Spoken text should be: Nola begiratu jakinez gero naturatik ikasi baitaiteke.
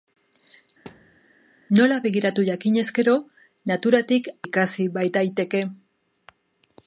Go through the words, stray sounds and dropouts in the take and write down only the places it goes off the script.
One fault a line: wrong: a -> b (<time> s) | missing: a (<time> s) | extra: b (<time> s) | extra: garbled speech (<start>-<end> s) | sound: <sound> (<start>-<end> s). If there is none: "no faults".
sound: thud (0.9-1.2 s)